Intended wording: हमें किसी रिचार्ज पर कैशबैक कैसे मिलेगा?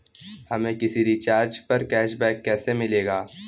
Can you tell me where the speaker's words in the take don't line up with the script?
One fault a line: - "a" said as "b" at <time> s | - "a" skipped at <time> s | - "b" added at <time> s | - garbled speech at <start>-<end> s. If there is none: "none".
none